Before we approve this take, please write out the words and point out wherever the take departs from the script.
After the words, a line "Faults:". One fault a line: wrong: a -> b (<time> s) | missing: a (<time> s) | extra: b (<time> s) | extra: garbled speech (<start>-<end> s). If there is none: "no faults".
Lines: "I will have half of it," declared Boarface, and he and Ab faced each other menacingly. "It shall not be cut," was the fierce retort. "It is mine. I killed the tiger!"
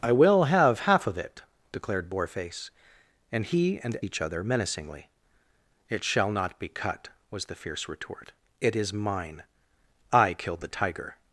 "I will have half of it," declared Boarface, and he and Each other menacingly. "It shall not be cut," was the fierce retort. "It is mine. I killed the tiger!"
Faults:
missing: Ab faced (4.0 s)